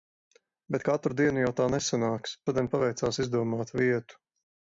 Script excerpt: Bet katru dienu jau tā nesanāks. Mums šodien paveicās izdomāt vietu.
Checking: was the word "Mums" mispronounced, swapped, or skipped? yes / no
yes